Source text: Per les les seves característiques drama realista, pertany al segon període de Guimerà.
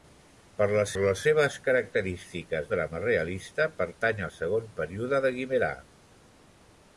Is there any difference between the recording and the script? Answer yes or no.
no